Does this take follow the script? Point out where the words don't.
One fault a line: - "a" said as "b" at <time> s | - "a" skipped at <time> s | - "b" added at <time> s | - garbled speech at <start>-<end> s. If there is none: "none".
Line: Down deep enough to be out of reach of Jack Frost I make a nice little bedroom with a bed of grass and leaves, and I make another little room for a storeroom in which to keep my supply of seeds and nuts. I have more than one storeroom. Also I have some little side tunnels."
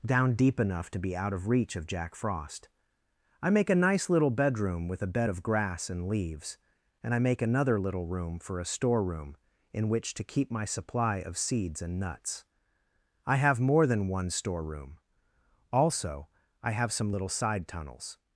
none